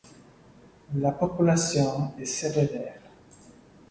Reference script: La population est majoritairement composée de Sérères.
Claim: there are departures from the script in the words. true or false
true